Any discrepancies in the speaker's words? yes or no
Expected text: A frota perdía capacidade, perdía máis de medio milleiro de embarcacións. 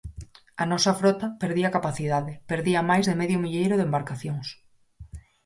yes